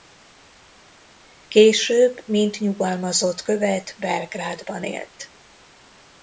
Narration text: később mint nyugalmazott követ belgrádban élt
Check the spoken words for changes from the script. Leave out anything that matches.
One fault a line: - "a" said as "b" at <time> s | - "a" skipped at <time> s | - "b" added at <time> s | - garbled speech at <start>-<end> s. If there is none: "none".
none